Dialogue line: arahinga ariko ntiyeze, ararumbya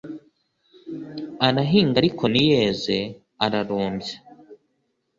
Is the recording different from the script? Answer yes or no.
no